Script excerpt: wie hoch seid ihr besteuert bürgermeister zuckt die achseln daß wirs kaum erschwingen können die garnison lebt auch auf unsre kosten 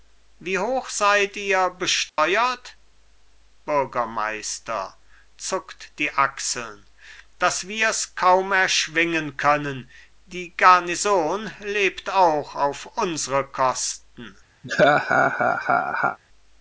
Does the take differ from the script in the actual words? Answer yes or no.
no